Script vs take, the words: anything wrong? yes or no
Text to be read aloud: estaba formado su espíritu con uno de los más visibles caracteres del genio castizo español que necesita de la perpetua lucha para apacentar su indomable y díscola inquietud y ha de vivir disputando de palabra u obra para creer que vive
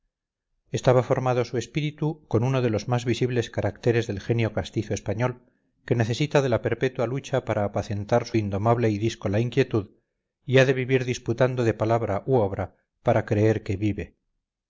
no